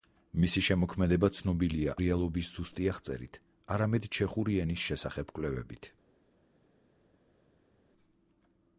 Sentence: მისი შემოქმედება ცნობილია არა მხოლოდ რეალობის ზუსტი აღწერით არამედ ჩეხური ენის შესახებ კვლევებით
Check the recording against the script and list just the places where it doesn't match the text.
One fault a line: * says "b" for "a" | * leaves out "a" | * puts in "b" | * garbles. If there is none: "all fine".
* leaves out "არა მხოლოდ"